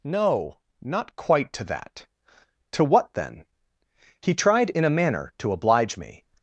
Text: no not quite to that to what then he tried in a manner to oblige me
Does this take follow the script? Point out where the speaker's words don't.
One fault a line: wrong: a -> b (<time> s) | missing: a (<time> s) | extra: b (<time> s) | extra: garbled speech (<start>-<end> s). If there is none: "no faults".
no faults